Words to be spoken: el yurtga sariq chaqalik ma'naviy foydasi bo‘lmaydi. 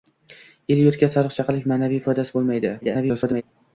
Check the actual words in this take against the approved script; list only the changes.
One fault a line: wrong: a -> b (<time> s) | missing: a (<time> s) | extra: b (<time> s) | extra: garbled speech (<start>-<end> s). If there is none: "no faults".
extra: garbled speech (2.8-3.4 s)